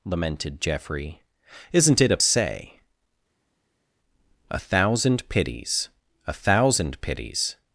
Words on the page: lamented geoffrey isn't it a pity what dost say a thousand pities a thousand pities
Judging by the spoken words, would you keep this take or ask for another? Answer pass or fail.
fail